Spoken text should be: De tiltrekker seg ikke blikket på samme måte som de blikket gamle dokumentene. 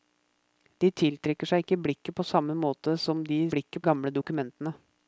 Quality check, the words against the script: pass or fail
pass